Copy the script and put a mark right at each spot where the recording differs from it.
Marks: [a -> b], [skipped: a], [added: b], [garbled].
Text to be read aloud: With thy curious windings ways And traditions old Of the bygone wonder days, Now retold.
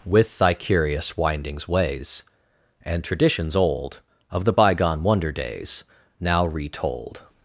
With thy curious windings ways And traditions old Of the bygone wonder days, Now retold.